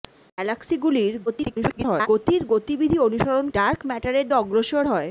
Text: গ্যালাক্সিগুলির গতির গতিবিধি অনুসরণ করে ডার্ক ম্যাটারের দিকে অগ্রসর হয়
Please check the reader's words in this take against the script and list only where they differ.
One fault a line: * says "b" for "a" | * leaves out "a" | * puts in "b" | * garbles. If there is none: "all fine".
* garbles
* leaves out "করে"
* leaves out "দিকে"